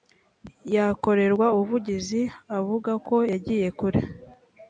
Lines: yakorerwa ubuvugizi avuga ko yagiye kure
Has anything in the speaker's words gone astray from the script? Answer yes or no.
no